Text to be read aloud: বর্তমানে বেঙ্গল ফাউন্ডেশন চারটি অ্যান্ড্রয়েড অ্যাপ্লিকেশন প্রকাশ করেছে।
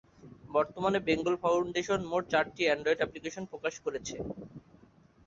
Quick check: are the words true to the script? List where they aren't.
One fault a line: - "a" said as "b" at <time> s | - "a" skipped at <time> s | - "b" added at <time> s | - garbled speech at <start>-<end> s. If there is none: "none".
- "মোট" added at 2.1 s